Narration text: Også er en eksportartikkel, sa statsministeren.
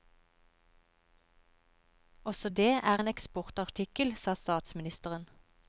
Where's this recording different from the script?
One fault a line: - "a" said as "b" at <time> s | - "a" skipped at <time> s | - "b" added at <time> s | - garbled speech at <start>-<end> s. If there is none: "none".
- "det" added at 2.5 s